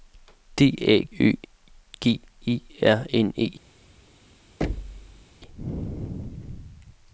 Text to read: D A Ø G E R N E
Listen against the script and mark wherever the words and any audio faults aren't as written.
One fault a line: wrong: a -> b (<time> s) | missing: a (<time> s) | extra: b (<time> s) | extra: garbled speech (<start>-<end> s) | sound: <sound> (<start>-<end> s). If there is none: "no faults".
sound: thud (4.6-5.3 s)